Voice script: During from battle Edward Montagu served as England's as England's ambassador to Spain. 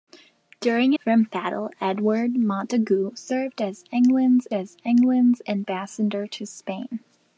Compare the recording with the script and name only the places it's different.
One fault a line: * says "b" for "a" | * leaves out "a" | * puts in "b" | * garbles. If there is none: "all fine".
all fine